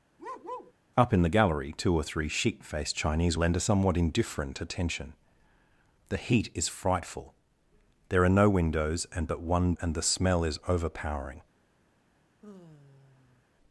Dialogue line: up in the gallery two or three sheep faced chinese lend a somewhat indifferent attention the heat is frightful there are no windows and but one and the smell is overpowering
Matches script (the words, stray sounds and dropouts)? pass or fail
fail